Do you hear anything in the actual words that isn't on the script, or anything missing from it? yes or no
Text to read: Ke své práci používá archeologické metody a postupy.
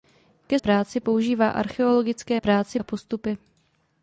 yes